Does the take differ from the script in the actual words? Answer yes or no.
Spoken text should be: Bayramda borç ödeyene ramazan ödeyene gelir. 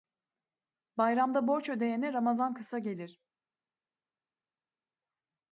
yes